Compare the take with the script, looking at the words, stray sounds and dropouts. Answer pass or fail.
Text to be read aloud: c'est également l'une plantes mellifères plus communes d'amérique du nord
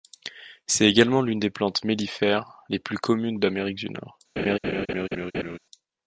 fail